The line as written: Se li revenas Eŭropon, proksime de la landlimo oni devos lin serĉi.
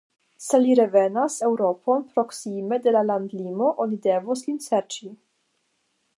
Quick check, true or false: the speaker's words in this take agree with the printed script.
true